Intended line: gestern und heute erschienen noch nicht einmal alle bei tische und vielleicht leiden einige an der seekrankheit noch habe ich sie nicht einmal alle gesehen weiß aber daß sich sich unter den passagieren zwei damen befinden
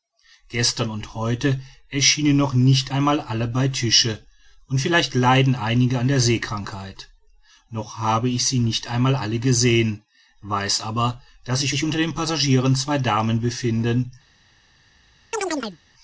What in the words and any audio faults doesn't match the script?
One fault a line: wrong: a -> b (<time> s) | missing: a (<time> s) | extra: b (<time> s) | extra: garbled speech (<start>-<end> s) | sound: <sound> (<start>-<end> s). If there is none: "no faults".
sound: chirp (15.3-15.8 s)